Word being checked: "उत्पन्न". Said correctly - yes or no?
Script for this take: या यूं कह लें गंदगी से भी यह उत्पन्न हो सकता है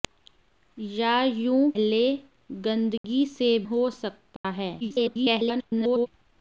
no